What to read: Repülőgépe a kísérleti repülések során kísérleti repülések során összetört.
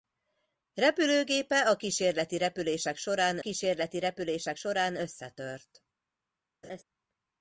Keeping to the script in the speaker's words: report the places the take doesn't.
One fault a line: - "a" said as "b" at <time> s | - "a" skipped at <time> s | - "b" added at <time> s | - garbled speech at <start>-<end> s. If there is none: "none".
none